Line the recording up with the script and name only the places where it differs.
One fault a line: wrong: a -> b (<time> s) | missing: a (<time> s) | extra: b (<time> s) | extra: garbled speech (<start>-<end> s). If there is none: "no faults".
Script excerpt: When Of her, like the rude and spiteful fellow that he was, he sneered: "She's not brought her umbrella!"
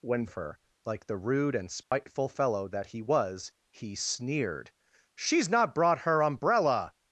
no faults